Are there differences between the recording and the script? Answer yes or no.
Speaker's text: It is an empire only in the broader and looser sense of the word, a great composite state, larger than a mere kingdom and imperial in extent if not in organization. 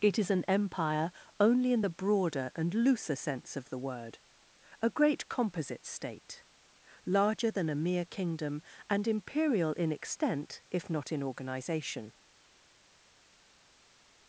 no